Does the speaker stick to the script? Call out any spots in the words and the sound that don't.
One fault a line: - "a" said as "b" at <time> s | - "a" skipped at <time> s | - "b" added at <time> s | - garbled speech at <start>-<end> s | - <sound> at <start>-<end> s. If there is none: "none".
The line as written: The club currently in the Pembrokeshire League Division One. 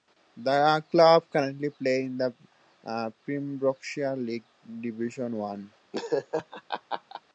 - "play" added at 1.7 s
- laugh at 5.9-7.2 s